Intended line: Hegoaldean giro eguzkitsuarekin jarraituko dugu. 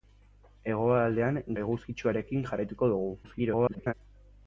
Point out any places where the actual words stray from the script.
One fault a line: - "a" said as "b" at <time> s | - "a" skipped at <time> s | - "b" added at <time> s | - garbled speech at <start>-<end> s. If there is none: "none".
- "giro" skipped at 1.4 s
- garbled speech at 3.2-3.9 s